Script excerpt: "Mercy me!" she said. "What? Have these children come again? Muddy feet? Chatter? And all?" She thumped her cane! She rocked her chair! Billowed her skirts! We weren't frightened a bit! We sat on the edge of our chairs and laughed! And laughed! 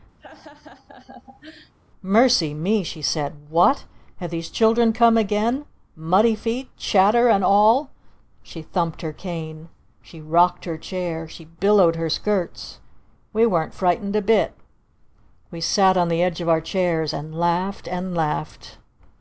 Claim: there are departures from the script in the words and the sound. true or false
true